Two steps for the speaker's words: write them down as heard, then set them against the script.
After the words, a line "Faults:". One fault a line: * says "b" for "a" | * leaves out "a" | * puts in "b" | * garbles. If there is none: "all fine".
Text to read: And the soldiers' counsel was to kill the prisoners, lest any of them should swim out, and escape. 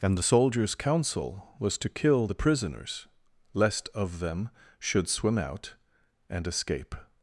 And the soldiers' counsel was to kill the prisoners, lest of them should swim out, and escape.
Faults:
* leaves out "any"